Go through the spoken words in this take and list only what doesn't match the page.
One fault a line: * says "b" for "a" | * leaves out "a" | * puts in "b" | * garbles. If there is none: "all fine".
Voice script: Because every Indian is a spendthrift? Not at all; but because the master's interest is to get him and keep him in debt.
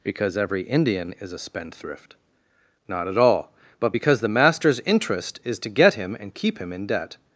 all fine